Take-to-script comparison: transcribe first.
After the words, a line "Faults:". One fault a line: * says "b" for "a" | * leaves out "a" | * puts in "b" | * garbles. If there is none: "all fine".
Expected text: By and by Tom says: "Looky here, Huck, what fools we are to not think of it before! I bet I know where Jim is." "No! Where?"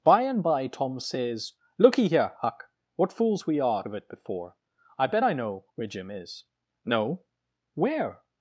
By and by Tom says: "Looky here, Huck, what fools we are of it before! I bet I know where Jim is." "No! Where?"
Faults:
* leaves out "to not think"